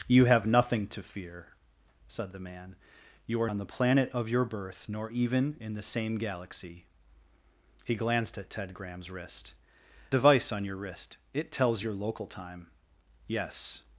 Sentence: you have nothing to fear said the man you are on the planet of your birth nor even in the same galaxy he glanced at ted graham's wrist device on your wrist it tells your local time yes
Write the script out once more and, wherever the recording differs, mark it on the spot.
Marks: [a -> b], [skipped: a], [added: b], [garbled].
you have nothing to fear said the man you are on the planet of your birth nor even in the same galaxy he glanced at ted graham's wrist device on your wrist it tells your local time yes